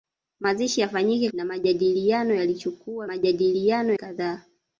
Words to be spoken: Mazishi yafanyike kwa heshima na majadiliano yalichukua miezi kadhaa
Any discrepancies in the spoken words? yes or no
yes